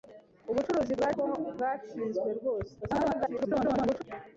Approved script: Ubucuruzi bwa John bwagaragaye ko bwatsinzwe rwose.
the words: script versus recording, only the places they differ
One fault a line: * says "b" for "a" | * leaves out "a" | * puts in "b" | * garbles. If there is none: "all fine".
* leaves out "John bwagaragaye"
* garbles